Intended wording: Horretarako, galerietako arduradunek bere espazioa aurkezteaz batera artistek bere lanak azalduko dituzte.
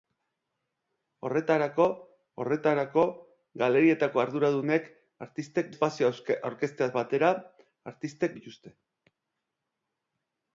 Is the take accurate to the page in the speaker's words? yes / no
no